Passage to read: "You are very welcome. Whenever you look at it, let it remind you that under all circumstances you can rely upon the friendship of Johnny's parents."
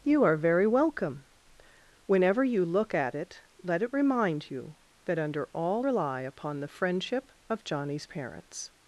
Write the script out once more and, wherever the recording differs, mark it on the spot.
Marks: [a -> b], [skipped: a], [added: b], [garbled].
"You are very welcome. Whenever you look at it, let it remind you that under all [skipped: circumstances you can] rely upon the friendship of Johnny's parents."